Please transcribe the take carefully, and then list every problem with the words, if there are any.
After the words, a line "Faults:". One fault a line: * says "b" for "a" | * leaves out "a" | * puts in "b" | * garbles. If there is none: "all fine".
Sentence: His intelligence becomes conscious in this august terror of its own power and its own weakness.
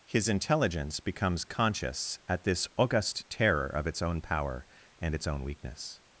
His intelligence becomes conscious at this august terror of its own power and its own weakness.
Faults:
* says "at" for "in"